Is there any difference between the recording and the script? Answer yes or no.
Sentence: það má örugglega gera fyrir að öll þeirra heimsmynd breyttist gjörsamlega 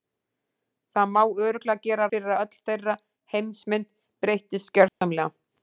no